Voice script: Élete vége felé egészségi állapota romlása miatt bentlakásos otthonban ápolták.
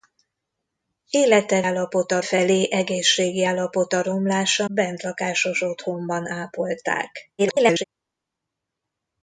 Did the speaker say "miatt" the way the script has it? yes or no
no